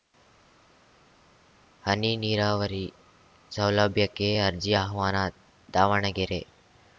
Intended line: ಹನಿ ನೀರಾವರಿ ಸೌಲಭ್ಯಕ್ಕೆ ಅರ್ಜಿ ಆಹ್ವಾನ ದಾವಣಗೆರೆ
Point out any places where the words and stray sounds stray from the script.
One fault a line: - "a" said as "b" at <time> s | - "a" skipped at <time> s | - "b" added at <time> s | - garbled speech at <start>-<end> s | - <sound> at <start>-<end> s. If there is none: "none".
none